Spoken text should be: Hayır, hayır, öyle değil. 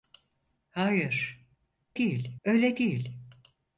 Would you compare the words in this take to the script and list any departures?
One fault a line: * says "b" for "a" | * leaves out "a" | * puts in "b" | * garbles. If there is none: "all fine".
* says "değil" for "hayır"